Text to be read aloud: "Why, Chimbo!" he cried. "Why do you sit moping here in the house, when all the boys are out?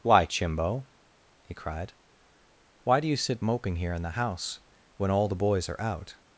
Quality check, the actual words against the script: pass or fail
pass